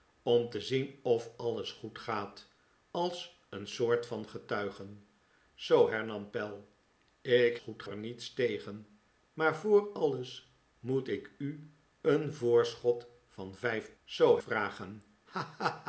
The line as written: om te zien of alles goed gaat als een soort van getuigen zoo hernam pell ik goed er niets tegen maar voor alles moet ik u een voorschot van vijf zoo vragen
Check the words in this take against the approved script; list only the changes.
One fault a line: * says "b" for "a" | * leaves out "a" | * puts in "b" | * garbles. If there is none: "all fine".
all fine